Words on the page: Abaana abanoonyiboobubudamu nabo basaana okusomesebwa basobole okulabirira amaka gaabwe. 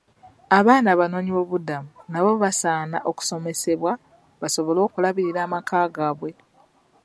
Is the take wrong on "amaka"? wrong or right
right